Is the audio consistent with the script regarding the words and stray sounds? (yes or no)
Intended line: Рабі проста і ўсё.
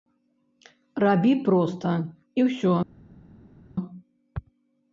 yes